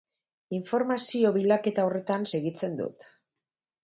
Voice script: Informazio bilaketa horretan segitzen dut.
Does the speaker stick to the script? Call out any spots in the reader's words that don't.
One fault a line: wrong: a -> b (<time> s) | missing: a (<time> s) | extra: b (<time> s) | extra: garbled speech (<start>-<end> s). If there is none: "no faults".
no faults